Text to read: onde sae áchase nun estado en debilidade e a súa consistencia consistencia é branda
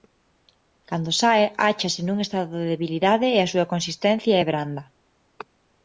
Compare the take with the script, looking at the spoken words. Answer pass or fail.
fail